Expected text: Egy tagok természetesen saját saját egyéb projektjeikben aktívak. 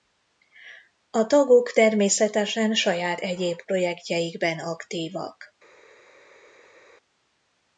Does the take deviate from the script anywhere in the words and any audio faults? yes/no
yes